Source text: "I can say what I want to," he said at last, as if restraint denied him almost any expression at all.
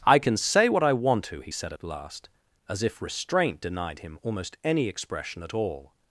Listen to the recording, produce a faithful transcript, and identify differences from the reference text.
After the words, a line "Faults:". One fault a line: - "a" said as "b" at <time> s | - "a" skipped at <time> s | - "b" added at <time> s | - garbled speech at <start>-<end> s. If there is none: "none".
"I can say what I want to," he said at last, as if restraint denied him almost any expression at all.
Faults:
none